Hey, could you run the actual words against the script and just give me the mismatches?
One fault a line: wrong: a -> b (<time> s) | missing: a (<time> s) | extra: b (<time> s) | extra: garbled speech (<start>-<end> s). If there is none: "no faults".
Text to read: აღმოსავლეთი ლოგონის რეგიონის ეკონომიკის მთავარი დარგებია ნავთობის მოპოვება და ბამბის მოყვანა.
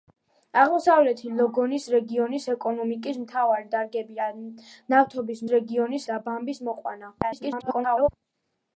wrong: მოპოვება -> რეგიონის (5.5 s)
extra: garbled speech (7.2-8.1 s)